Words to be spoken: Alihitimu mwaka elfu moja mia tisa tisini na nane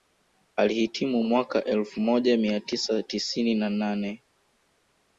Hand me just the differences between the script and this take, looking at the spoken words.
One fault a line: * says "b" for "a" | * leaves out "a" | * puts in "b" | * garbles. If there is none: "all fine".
all fine